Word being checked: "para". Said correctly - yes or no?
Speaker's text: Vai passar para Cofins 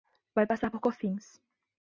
no